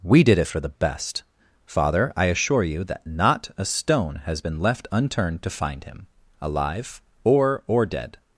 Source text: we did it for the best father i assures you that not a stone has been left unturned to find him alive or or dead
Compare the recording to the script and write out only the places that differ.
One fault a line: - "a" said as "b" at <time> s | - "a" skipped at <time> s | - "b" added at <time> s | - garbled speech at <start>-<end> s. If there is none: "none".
- "assures" said as "assure" at 2.2 s